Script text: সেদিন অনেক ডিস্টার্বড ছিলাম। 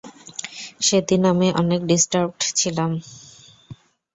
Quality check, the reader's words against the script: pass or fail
fail